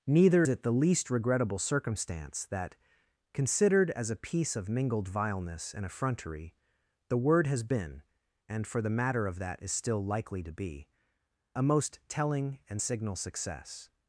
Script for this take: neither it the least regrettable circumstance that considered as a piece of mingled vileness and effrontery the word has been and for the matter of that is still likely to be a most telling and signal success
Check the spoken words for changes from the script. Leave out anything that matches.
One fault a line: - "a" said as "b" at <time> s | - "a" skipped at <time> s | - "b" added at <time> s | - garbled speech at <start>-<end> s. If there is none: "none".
none